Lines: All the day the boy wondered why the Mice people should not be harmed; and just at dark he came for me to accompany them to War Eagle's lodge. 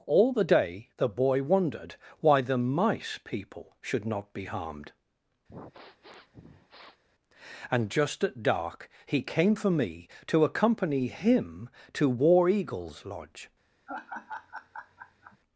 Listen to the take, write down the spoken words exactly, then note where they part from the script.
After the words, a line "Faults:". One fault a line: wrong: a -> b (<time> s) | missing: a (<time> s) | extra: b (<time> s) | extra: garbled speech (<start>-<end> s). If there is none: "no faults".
All the day the boy wondered why the Mice people should not be harmed; and just at dark he came for me to accompany him to War Eagle's lodge.
Faults:
wrong: them -> him (11.1 s)